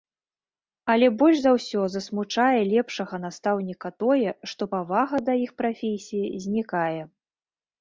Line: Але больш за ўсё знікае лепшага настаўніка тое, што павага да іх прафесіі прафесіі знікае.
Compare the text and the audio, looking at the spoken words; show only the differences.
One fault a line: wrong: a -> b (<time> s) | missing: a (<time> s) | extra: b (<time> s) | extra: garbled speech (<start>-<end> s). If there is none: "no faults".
wrong: знікае -> засмучае (1.9 s)
missing: прафесіі (6.3 s)